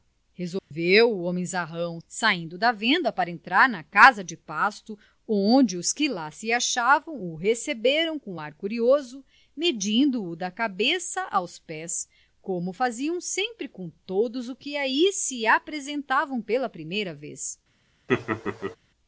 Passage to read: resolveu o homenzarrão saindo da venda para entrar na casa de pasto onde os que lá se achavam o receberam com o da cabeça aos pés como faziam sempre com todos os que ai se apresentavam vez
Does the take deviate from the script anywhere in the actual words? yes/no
yes